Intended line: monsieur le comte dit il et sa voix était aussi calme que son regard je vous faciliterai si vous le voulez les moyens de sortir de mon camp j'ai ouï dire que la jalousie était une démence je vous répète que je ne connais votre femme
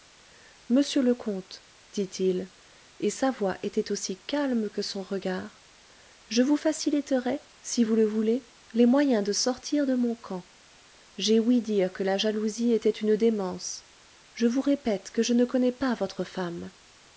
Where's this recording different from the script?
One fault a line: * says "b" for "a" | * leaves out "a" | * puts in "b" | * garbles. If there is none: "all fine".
* puts in "pas"